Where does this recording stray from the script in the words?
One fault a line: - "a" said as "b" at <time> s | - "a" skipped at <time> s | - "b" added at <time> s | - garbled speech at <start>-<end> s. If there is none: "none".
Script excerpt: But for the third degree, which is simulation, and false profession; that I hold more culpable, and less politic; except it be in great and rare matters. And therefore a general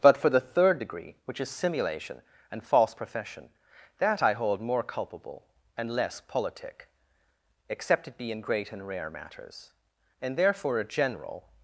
none